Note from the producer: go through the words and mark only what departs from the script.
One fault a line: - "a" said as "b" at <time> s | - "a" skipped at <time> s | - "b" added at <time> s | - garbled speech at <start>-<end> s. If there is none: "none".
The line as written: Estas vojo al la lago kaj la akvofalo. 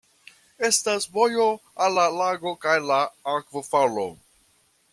none